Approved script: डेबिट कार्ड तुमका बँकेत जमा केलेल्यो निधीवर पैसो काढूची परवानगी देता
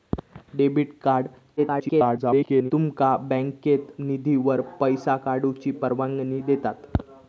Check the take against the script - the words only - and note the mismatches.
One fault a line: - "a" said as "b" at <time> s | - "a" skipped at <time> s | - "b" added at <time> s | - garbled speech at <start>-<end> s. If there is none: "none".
- garbled speech at 1.6-2.7 s
- "जमा केलेल्यो" skipped at 3.9 s